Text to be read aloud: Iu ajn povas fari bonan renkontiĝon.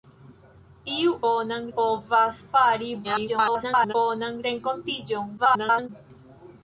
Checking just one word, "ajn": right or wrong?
wrong